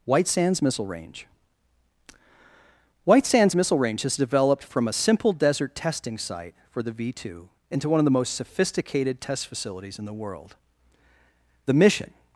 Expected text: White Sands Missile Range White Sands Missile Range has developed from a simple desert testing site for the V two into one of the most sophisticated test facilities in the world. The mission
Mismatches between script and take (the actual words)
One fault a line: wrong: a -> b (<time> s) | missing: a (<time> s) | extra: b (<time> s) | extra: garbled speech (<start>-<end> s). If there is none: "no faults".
no faults